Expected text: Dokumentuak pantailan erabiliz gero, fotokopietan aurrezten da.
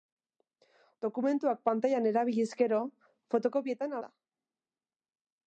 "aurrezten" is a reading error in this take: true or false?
true